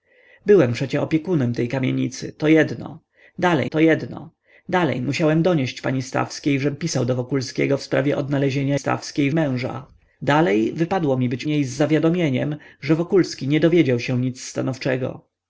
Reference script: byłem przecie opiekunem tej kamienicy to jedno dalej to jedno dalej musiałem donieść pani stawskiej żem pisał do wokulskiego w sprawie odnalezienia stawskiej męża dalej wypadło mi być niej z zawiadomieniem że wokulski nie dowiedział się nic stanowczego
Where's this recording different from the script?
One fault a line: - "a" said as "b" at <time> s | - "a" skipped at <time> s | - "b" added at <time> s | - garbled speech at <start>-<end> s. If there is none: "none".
none